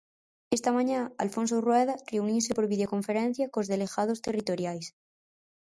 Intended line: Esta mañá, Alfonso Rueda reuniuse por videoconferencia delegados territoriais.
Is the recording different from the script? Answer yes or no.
yes